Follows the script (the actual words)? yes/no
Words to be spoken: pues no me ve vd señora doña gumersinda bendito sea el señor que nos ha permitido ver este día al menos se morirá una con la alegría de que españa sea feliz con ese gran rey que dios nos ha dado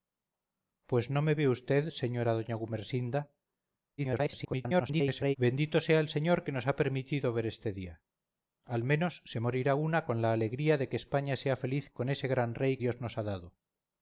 no